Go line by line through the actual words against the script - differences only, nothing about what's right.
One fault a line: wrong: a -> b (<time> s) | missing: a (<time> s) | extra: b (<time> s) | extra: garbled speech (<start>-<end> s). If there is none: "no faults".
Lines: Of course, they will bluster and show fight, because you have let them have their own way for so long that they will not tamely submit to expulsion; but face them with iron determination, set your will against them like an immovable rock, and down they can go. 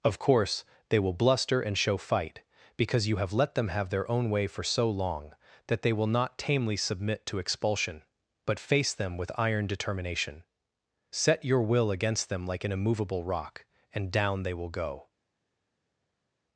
wrong: can -> will (14.6 s)